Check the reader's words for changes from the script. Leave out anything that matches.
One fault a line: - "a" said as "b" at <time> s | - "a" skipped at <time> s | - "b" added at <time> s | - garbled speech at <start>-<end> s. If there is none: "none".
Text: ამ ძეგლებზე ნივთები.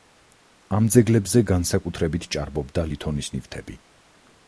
- "განსაკუთრებით ჭარბობდა ლითონის" added at 1.5 s